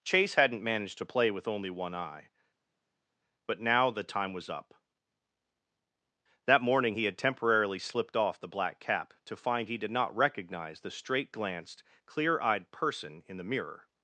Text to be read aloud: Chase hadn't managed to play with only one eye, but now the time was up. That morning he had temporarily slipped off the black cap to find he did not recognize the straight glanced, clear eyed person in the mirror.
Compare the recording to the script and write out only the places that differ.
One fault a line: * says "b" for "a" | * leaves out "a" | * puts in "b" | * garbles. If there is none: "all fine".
all fine